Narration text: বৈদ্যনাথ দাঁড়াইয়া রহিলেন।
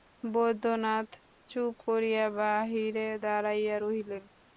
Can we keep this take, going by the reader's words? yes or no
no